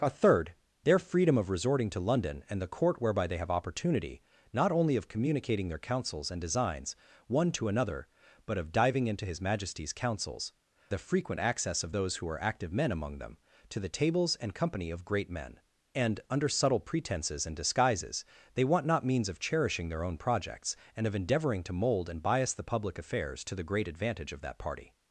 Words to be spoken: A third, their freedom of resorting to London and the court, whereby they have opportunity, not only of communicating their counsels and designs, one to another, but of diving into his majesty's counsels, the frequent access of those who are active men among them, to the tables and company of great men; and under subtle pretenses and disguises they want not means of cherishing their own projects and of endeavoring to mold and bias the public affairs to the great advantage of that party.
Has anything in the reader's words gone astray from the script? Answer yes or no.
no